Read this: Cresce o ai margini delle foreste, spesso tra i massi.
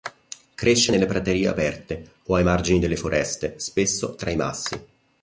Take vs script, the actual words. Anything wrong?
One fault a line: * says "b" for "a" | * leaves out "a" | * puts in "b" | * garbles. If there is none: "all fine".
* puts in "nelle praterie aperte"